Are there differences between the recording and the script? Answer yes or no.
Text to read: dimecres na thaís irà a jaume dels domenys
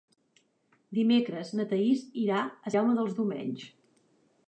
no